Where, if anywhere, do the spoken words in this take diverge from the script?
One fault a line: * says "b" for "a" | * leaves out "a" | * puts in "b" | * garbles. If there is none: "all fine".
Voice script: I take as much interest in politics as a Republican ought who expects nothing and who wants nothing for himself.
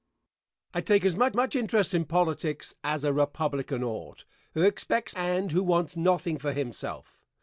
* puts in "much"
* leaves out "nothing"